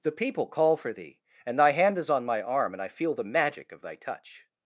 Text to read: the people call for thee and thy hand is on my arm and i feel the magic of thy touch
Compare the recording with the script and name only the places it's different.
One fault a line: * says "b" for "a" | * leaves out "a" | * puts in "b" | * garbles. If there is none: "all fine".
all fine